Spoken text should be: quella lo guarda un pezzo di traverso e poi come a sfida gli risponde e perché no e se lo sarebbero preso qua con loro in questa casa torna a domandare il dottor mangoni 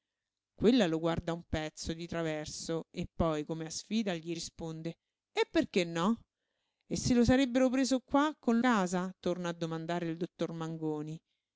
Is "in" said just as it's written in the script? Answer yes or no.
no